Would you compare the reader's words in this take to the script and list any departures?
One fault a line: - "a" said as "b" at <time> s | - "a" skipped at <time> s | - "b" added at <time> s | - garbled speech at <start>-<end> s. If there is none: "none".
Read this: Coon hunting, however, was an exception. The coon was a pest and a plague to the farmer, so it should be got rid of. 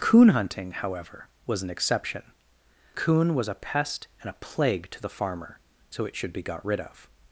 - "The" skipped at 2.2 s